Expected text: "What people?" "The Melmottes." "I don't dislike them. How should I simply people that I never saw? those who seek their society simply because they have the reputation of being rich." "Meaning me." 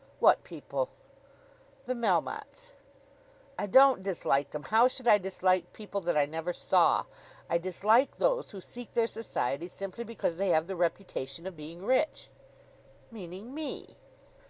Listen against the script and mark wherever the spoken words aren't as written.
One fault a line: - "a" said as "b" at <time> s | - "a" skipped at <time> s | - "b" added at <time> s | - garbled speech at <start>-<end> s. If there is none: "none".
- "simply" said as "dislike" at 5.2 s
- "I dislike" added at 7.5 s